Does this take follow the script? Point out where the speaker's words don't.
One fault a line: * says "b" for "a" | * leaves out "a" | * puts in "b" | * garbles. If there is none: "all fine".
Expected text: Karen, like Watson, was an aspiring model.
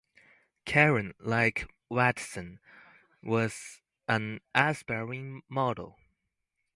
all fine